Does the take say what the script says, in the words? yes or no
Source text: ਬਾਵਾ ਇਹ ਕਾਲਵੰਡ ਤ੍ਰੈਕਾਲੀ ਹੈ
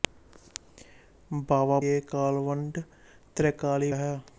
yes